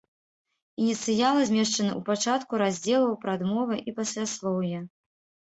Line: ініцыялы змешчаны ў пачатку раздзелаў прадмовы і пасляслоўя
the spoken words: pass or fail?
pass